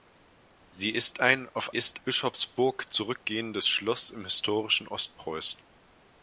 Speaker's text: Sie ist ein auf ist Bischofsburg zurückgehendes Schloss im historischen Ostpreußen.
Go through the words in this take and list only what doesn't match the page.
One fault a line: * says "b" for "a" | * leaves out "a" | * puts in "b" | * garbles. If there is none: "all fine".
all fine